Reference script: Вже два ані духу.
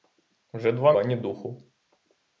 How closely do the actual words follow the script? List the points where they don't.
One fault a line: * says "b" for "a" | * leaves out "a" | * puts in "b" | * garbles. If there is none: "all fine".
all fine